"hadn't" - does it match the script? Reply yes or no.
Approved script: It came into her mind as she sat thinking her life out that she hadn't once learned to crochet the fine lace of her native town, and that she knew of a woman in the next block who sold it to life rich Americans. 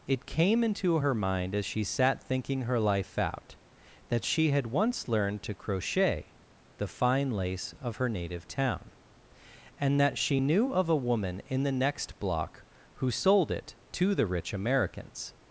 no